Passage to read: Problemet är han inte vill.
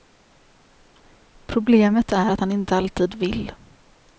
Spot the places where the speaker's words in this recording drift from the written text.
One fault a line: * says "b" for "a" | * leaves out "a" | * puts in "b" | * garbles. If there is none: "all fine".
* puts in "att"
* puts in "alltid"